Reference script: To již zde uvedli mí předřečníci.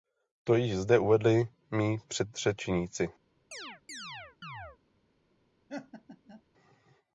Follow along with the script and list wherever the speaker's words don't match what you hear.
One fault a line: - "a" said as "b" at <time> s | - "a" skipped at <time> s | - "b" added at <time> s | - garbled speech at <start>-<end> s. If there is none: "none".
none